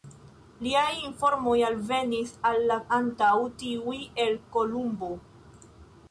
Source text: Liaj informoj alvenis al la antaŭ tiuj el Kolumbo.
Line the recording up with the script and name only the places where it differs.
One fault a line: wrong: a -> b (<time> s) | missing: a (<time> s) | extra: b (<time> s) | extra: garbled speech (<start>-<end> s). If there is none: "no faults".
no faults